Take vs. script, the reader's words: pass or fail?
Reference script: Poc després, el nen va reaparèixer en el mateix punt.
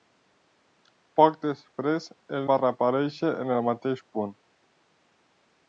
fail